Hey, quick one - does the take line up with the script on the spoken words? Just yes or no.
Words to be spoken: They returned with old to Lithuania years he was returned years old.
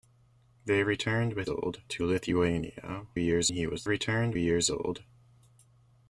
yes